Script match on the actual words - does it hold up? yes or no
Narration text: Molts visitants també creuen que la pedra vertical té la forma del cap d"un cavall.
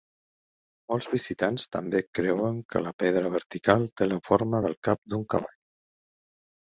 yes